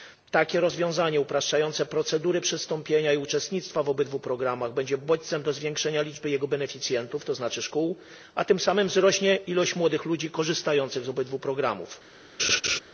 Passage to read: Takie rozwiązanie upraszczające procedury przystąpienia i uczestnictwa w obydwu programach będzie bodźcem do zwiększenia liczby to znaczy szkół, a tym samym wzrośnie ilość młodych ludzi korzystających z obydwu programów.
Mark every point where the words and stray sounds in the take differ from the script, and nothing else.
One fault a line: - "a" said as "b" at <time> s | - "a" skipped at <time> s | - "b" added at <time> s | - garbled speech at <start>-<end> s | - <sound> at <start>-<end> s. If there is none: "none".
- "jego beneficjentów" added at 6.3 s
- laugh at 12.4-12.8 s